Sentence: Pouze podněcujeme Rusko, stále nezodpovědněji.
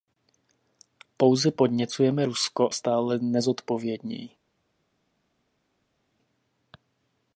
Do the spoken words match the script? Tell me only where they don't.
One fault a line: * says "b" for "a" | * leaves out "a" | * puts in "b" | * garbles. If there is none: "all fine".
all fine